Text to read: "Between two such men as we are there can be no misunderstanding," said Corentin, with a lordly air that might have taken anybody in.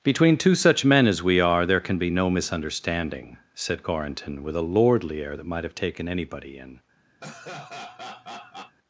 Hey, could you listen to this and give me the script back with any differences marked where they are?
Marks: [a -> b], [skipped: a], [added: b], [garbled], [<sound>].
"Between two such men as we are there can be no misunderstanding," said Corentin, with a lordly air that might have taken anybody in. [laugh]